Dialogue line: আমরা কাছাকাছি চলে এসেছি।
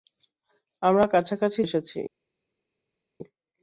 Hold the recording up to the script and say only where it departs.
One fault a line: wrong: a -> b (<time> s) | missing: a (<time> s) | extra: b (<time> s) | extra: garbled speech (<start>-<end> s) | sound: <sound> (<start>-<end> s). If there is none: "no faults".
missing: চলে (1.6 s)